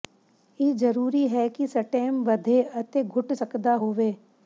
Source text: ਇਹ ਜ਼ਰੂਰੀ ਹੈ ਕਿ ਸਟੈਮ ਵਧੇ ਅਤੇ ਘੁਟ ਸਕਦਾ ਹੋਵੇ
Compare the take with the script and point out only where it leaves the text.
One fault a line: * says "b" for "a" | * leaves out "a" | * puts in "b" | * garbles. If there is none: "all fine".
all fine